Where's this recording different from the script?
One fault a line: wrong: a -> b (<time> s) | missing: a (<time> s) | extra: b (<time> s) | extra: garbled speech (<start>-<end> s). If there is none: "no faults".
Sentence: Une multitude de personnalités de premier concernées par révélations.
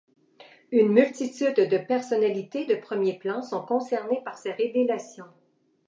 extra: plan sont (3.2 s)
extra: ces (4.4 s)